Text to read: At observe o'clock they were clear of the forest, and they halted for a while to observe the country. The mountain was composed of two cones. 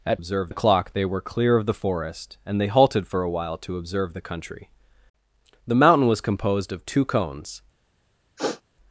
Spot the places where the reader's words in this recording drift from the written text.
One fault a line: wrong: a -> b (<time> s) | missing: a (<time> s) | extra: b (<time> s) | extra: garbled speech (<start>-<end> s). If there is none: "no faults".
no faults